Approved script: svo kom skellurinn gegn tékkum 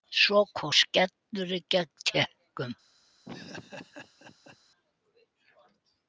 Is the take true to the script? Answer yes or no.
yes